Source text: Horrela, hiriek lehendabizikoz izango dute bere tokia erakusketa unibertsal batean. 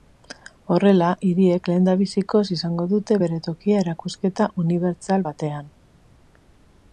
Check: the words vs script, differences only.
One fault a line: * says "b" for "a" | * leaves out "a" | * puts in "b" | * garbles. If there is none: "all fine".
all fine